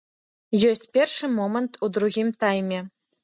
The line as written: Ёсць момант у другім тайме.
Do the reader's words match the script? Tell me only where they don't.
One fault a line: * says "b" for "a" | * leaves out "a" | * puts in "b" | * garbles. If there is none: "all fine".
* puts in "першы"